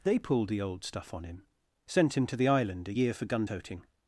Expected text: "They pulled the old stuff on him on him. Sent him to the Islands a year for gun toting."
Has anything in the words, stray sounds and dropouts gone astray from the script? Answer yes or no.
yes